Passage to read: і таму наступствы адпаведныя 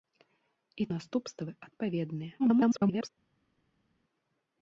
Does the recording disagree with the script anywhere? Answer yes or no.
yes